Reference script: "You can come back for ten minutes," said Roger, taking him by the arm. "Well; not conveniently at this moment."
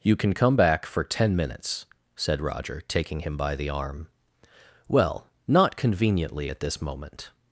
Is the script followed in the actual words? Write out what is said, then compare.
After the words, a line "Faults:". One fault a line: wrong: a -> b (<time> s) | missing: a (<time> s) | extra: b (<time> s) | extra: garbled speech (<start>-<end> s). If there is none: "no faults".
"You can come back for ten minutes," said Roger, taking him by the arm. "Well; not conveniently at this moment."
Faults:
no faults